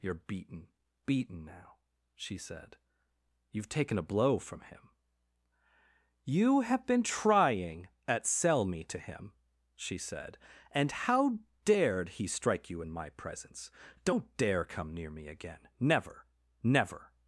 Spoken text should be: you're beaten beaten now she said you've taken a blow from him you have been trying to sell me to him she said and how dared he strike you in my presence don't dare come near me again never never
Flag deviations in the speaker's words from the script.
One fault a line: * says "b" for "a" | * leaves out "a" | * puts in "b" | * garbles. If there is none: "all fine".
* says "at" for "to"